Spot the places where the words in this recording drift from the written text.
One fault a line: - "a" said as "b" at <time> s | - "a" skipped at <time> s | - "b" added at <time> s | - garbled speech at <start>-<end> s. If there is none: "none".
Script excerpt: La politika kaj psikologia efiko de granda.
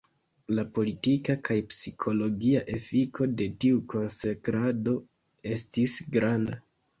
- "tiu konsekrado estis" added at 3.7 s